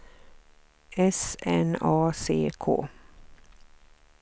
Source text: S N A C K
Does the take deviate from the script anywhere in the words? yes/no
no